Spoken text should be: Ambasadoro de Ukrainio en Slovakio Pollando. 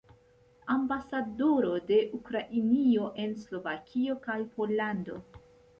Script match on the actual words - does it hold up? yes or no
no